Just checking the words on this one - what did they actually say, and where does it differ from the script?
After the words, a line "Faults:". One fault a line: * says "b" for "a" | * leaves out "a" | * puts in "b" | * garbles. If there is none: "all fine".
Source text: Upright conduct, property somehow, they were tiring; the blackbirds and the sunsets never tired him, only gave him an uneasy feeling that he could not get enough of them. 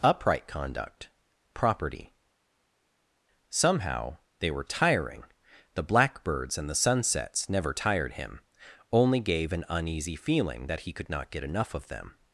Upright conduct, property somehow, they were tiring; the blackbirds and the sunsets never tired him, only gave an uneasy feeling that he could not get enough of them.
Faults:
* leaves out "him"